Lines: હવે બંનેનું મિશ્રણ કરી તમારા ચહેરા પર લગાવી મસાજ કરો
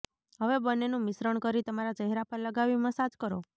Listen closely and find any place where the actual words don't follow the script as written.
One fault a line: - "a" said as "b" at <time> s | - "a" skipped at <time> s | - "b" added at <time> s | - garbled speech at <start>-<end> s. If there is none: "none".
none